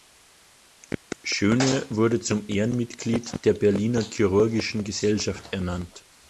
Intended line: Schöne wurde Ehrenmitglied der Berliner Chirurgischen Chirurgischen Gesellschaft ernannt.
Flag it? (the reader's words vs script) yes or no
yes